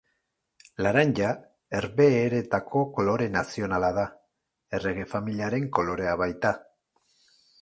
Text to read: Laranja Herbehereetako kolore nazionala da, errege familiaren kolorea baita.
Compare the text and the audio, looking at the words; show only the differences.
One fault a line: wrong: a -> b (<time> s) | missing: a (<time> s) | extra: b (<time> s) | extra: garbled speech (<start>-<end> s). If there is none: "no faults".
no faults